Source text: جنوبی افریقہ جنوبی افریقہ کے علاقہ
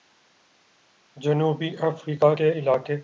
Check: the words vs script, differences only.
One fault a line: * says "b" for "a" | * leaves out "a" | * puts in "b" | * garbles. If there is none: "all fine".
* leaves out "جنوبی افریقہ"